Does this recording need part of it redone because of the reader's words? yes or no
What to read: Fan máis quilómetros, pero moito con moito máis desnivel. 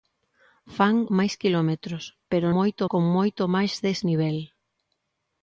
no